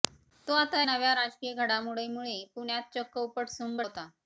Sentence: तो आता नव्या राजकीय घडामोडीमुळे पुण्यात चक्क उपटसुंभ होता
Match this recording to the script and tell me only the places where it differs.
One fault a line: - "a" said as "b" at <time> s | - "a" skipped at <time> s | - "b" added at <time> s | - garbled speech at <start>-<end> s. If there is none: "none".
none